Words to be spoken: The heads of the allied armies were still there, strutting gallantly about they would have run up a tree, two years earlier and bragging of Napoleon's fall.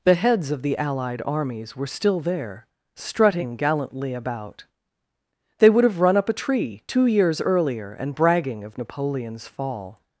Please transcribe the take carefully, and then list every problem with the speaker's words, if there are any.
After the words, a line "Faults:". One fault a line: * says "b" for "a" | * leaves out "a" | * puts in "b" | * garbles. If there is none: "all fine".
The heads of the allied armies were still there, strutting gallantly about they would have run up a tree, two years earlier and bragging of Napoleon's fall.
Faults:
all fine